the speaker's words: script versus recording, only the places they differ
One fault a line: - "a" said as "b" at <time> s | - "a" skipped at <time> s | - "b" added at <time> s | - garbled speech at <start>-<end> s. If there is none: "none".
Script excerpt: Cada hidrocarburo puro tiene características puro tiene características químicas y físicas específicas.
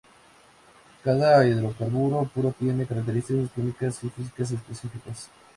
- "puro tiene características" skipped at 3.5 s